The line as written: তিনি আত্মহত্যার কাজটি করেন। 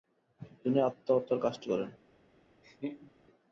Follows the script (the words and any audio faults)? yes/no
no